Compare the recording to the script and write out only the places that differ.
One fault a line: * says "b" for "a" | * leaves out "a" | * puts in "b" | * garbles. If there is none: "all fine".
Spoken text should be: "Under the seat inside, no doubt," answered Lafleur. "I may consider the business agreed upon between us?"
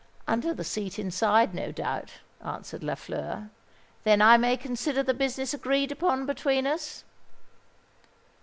* puts in "Then"